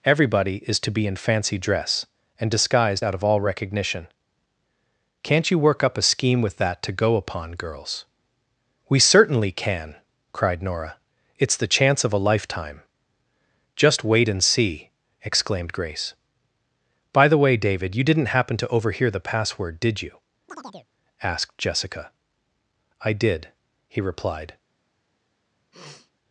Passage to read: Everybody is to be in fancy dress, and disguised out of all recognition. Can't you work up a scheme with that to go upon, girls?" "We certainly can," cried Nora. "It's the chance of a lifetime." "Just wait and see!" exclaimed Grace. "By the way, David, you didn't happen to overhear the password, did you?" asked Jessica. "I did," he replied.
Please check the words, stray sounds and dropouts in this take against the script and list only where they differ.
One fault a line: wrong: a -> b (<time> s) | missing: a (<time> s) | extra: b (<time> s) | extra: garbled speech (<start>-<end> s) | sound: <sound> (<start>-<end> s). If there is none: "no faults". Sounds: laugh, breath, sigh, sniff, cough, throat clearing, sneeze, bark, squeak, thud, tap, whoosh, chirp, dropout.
sound: chirp (20.5-20.9 s)
sound: sniff (25.7-26.1 s)